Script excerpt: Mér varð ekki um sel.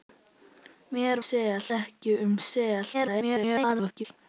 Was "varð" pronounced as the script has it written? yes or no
no